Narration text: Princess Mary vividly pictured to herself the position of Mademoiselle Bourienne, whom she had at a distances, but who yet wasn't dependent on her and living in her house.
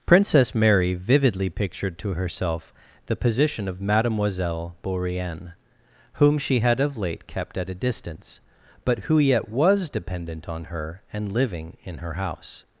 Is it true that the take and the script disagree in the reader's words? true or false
true